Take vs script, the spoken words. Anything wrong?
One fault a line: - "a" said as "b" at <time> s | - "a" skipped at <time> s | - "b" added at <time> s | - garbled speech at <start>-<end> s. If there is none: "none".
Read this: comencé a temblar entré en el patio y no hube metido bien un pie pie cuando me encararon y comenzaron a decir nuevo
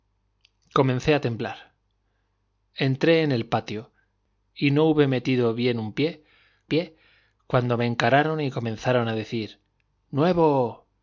none